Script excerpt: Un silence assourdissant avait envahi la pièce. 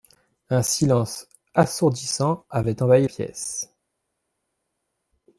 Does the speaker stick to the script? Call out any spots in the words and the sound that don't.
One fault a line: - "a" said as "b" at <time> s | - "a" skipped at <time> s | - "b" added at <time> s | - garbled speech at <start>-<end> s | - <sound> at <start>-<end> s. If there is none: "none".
- "la" skipped at 3.0 s